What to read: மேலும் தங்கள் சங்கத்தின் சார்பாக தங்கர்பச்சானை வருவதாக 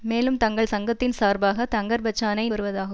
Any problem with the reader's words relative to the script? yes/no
no